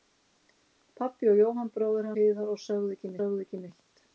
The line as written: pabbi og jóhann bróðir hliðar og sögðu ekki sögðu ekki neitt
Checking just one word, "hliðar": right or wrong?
right